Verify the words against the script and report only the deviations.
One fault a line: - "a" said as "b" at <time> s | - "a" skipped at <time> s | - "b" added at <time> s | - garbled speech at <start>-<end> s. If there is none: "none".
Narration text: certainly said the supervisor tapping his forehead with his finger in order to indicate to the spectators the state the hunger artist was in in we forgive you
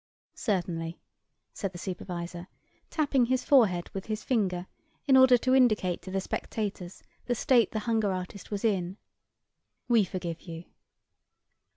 - "in" skipped at 9.0 s